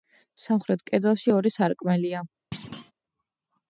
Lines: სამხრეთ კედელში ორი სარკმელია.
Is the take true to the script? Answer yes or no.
yes